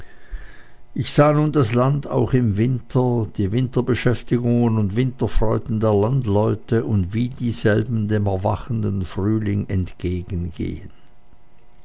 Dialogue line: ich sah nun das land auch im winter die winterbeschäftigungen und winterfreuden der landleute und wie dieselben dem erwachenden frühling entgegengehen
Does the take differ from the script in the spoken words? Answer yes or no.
no